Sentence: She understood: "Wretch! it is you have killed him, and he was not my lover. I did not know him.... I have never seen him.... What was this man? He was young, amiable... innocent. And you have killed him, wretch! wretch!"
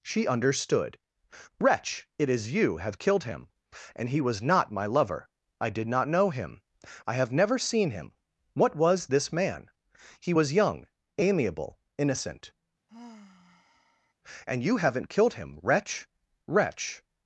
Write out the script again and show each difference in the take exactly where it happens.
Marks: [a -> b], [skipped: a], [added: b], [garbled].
She understood: "Wretch! it is you have killed him, and he was not my lover. I did not know him.... I have never seen him.... What was this man? He was young, amiable... innocent. And you [have -> haven't] killed him, wretch! wretch!"